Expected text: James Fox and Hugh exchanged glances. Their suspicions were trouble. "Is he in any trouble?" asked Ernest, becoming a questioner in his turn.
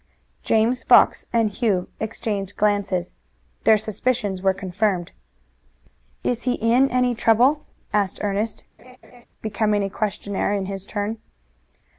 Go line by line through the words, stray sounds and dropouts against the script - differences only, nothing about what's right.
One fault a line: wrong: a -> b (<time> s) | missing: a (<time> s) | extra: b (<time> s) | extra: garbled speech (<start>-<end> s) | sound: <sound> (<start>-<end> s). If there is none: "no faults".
wrong: trouble -> confirmed (4.5 s)
sound: laugh (8.8-9.3 s)